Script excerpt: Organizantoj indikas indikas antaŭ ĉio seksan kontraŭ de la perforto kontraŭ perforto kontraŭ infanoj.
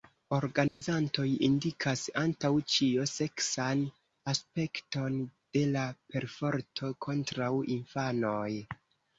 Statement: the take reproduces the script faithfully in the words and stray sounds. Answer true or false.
false